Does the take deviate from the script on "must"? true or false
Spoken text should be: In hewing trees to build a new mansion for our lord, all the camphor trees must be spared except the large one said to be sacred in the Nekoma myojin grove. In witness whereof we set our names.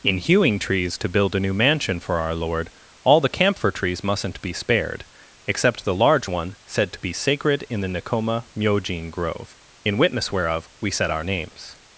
true